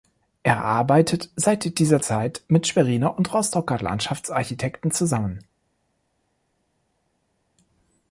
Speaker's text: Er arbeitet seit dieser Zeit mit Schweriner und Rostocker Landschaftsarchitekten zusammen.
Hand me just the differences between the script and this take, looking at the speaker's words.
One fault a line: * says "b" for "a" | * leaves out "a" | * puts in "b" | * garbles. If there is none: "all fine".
all fine